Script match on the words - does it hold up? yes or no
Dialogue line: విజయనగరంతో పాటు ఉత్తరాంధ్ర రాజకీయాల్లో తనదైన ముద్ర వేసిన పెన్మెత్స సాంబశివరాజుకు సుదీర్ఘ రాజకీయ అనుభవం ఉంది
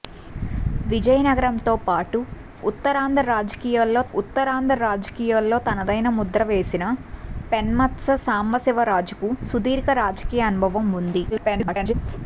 no